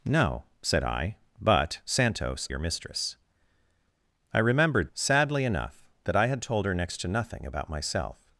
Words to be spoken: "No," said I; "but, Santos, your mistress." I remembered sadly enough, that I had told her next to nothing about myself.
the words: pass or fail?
pass